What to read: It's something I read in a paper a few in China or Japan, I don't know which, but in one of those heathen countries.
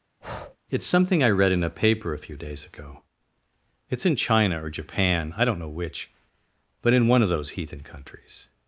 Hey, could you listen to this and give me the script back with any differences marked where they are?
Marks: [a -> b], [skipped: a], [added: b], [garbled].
It's something I read in a paper a few [added: days ago It's] in China or Japan, I don't know which, but in one of those heathen countries.